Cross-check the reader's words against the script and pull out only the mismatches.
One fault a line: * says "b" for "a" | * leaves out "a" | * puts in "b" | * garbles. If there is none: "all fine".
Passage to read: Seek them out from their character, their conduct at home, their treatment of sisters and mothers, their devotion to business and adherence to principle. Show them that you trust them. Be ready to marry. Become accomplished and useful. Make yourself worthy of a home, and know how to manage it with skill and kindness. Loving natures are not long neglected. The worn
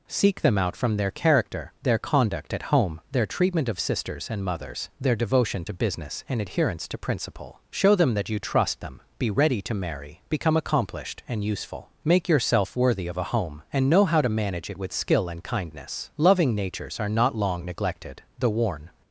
all fine